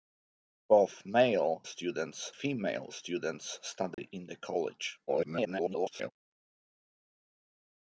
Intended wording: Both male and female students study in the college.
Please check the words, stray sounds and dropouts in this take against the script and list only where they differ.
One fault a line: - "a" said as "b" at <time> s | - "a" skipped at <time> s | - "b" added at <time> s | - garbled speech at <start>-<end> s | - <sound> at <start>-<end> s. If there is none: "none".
- "and" said as "students" at 1.6 s
- dropout at 3.9-4.0 s
- garbled speech at 5.1-6.1 s